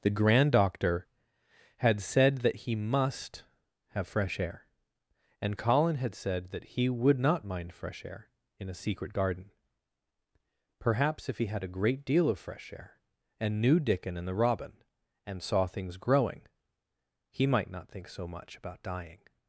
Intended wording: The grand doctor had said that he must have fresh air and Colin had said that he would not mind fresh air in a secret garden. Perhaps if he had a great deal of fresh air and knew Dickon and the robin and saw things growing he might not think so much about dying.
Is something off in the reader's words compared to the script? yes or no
no